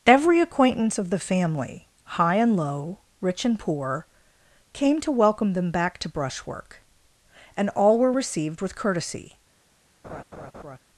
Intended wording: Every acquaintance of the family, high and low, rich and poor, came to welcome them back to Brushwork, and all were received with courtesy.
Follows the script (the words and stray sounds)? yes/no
no